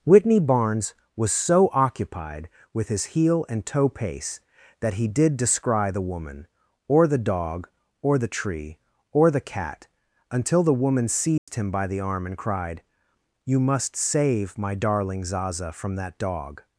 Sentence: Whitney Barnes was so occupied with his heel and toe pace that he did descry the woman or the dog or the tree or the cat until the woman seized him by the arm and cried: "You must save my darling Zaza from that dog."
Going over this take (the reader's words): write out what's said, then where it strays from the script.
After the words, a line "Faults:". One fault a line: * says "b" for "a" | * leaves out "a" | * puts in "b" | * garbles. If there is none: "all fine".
Whitney Barnes was so occupied with his heel and toe pace that he did descry the woman or the dog or the tree or the cat until the woman seized him by the arm and cried: "You must save my darling Zaza from that dog."
Faults:
all fine